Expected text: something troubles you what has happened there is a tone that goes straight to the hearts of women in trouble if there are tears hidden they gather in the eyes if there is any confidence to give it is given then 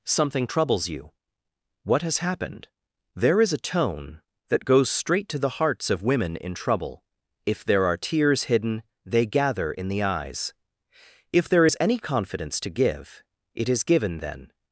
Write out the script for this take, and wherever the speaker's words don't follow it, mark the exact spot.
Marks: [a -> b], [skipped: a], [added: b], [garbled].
something troubles you what has happened there is a tone that goes straight to the hearts of women in trouble if there are tears hidden they gather in the eyes if there is any confidence to give it is given then